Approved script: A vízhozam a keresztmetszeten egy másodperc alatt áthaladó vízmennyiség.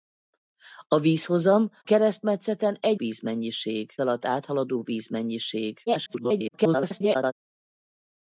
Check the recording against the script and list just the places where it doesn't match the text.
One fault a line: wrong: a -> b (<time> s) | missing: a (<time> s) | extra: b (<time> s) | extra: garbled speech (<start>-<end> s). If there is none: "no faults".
missing: a (1.7 s)
wrong: másodperc -> vízmennyiség (2.9 s)
extra: garbled speech (5.9-7.3 s)